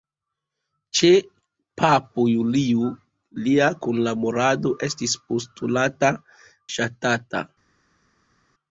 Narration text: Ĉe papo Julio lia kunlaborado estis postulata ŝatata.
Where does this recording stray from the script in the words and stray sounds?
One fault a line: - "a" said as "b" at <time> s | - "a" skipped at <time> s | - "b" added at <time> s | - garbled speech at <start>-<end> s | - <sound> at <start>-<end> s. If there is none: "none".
none